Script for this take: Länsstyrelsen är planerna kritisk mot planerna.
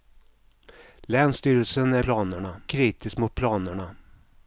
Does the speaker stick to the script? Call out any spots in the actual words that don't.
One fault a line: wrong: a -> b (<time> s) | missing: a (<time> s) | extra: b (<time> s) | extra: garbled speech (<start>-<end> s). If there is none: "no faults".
no faults